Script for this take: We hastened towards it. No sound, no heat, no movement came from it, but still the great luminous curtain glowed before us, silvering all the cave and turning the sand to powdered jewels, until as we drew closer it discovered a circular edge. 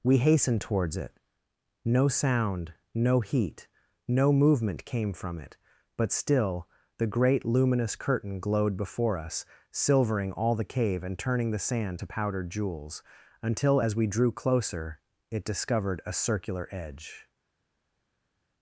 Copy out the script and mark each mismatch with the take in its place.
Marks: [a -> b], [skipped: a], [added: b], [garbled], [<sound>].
We hastened towards it. No sound, no heat, no movement came from it, but still the great luminous curtain glowed before us, silvering all the cave and turning the sand to powdered jewels, until as we drew closer it discovered a circular edge.